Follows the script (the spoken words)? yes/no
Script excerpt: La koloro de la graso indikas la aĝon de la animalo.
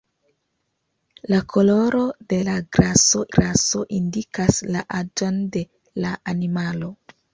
no